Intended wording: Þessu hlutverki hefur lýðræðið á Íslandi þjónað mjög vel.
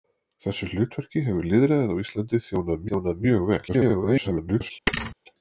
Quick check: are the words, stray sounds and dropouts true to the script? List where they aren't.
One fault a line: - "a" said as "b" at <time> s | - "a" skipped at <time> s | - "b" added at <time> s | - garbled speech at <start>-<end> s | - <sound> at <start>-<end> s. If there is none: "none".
- "þjónað" added at 2.9 s
- garbled speech at 3.7-4.7 s
- thud at 4.9-5.2 s